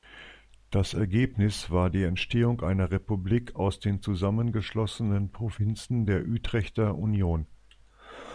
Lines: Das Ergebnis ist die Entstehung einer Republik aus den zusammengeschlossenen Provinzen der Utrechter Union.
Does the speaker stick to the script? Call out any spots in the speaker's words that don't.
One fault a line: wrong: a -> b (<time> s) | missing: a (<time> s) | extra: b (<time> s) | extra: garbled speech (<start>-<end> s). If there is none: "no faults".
wrong: ist -> war (1.7 s)